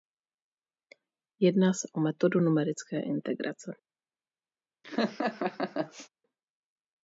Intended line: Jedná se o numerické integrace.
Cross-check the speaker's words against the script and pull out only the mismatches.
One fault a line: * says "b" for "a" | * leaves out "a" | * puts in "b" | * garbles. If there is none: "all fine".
* puts in "metodu"